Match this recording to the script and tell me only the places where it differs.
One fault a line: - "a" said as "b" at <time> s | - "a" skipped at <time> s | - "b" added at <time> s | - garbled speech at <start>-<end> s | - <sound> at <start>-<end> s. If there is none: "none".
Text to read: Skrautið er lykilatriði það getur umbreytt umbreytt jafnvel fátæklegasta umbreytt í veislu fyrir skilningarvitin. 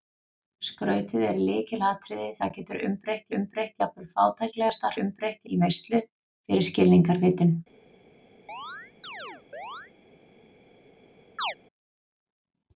- chirp at 8.5-9.9 s
- chirp at 11.4-11.5 s